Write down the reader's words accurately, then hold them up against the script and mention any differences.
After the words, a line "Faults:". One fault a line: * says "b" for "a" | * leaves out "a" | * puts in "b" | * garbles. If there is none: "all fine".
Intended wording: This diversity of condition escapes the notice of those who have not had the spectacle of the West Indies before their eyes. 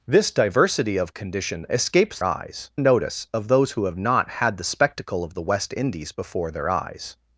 This diversity of condition escapes eyes notice of those who have not had the spectacle of the West Indies before their eyes.
Faults:
* says "eyes" for "the"